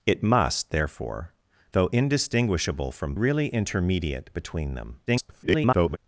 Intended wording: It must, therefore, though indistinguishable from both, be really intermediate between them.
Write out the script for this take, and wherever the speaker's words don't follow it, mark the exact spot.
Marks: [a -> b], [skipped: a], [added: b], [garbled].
It must, therefore, though indistinguishable from [skipped: both, be] really intermediate between them. [garbled]